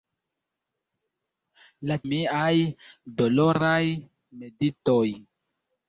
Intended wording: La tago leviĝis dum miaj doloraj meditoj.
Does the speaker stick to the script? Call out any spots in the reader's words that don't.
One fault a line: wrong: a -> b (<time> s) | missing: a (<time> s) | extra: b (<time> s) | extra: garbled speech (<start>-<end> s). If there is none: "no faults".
missing: tago leviĝis dum (2.0 s)